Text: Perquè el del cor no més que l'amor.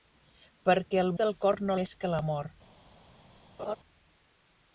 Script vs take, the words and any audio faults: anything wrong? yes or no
yes